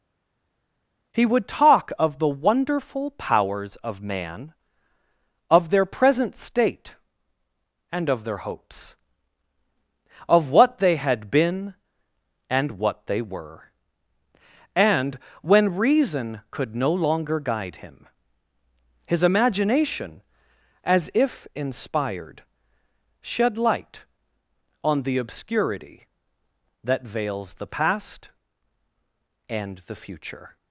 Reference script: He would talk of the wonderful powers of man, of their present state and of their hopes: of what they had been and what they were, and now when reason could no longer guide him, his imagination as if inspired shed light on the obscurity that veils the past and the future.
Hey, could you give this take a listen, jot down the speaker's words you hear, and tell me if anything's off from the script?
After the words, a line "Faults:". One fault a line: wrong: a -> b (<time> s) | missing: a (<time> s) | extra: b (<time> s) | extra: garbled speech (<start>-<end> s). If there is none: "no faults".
He would talk of the wonderful powers of man, of their present state and of their hopes: of what they had been and what they were, and when reason could no longer guide him, his imagination as if inspired shed light on the obscurity that veils the past and the future.
Faults:
missing: now (15.2 s)